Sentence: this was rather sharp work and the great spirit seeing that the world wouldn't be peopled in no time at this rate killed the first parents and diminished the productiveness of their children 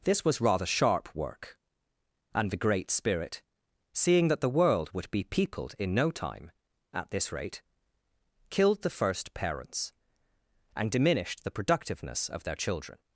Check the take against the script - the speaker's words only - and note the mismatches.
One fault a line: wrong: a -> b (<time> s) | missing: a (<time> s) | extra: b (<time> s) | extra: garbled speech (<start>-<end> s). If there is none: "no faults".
wrong: wouldn't -> would (4.9 s)